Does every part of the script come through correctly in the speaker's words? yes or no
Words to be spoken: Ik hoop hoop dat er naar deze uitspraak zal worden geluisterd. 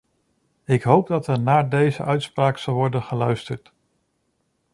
no